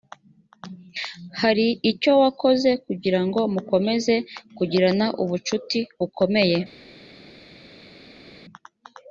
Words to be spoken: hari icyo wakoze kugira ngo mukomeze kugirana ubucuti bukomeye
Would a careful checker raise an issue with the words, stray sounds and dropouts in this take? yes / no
no